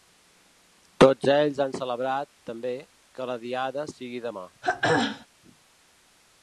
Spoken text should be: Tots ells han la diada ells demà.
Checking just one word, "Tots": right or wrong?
right